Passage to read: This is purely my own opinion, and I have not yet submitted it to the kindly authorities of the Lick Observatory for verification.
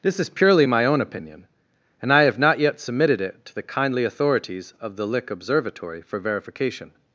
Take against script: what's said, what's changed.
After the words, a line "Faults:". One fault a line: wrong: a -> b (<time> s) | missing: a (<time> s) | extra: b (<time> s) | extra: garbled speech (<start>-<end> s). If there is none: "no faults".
This is purely my own opinion, and I have not yet submitted it to the kindly authorities of the Lick Observatory for verification.
Faults:
no faults